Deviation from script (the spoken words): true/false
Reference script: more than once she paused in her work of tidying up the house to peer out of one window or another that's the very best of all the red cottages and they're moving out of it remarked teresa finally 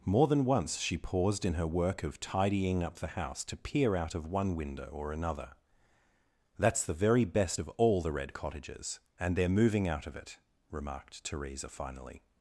false